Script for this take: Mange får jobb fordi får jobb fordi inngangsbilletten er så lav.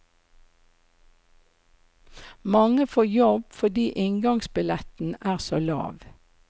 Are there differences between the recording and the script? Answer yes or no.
yes